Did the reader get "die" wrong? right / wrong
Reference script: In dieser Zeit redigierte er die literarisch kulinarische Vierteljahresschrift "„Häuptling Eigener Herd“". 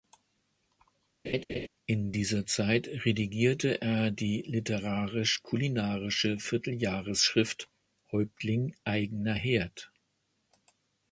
right